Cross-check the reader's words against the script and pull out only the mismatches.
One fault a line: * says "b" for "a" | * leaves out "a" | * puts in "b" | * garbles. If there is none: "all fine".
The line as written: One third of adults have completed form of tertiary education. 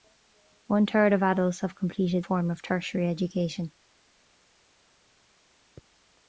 all fine